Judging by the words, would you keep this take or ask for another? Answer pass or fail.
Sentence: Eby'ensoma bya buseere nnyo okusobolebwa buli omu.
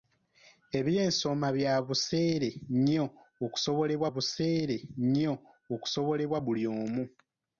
fail